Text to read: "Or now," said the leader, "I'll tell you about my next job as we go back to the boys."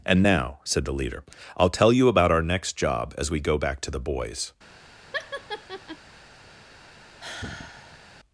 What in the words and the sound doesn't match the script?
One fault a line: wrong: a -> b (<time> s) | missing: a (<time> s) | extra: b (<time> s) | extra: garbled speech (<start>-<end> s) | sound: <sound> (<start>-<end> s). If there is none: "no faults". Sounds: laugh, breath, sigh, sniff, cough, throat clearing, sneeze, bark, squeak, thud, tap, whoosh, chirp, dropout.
wrong: Or -> And (0.0 s)
wrong: my -> our (2.3 s)
sound: laugh (5.1-6.0 s)
sound: sigh (7.2-8.1 s)